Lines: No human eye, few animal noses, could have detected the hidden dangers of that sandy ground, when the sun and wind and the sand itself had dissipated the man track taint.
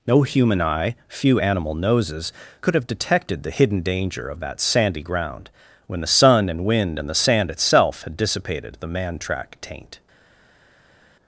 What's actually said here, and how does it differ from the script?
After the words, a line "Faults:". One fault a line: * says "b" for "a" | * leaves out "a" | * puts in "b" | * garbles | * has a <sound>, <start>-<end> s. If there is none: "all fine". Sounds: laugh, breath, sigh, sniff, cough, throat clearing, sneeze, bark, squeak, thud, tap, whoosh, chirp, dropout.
No human eye, few animal noses, could have detected the hidden danger of that sandy ground, when the sun and wind and the sand itself had dissipated the man track taint.
Faults:
* says "danger" for "dangers"